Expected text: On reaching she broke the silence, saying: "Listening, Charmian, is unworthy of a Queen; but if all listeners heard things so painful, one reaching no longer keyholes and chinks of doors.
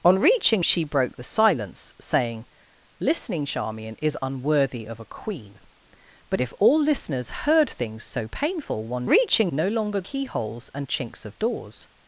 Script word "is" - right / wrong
right